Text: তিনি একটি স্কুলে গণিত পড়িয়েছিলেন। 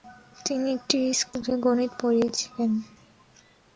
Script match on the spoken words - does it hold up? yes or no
yes